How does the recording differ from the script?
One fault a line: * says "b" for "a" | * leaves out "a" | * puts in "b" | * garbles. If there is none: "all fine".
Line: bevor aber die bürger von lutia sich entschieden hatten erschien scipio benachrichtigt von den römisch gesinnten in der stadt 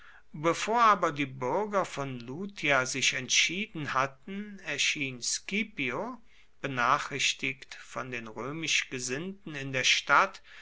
all fine